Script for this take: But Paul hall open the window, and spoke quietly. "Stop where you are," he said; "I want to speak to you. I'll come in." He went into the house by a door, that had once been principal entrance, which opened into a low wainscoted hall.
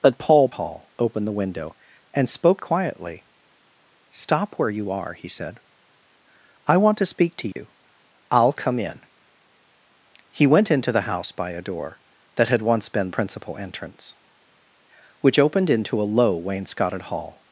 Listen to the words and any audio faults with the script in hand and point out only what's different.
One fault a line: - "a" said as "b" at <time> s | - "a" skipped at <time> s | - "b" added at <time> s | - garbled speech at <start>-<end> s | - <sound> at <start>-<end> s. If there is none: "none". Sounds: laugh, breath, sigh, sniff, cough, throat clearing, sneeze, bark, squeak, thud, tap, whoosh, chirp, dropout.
- dropout at 7.5-7.6 s